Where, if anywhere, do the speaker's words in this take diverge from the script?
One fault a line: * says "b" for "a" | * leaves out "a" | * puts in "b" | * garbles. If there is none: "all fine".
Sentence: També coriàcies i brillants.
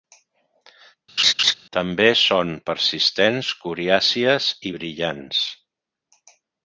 * puts in "són persistents"